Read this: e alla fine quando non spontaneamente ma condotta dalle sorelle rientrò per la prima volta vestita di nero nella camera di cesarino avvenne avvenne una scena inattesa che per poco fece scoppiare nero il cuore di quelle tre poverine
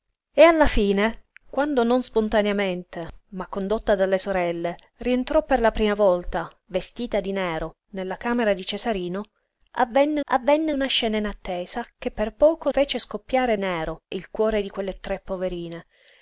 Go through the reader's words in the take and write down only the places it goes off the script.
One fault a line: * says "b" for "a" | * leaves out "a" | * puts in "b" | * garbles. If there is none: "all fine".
all fine